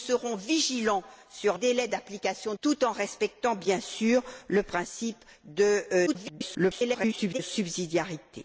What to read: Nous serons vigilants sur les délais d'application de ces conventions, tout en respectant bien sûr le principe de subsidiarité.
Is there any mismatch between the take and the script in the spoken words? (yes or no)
yes